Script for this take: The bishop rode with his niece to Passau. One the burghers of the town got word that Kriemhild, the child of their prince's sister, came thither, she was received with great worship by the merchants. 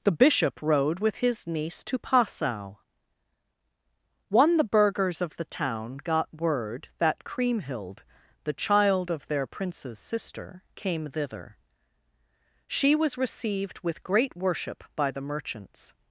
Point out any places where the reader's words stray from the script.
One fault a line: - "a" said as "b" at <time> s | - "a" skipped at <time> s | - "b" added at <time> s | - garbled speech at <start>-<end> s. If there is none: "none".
none